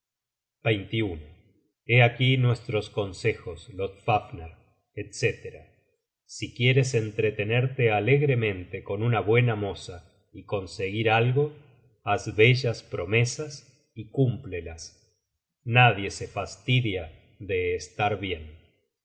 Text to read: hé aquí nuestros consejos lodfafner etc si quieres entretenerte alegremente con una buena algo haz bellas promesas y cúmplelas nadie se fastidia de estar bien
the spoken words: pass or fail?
fail